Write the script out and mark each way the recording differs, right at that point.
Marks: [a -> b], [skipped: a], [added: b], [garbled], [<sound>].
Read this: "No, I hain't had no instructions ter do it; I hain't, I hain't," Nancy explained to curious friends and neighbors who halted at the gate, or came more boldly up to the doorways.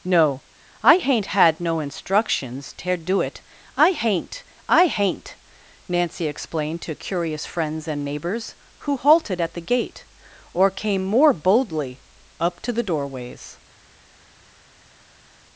"No, I hain't had no instructions ter do it; I hain't, I hain't," Nancy explained to curious friends and neighbors who halted at the gate, or came more boldly up to the doorways.